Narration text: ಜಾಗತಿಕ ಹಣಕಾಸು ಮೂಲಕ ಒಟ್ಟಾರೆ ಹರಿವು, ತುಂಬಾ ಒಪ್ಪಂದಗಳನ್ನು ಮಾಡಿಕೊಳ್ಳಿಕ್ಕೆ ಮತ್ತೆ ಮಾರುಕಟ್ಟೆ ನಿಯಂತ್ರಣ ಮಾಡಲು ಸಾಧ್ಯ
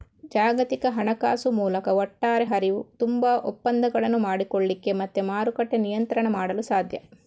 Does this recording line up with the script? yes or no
yes